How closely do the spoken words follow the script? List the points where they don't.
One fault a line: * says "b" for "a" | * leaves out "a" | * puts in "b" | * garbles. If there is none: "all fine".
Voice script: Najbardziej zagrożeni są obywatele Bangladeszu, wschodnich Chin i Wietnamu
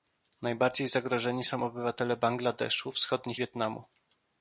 * leaves out "Chin i"